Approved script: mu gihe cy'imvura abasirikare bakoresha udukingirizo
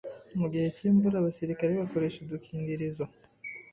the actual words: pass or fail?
pass